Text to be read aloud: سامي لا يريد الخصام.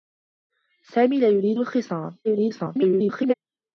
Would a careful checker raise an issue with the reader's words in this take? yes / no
yes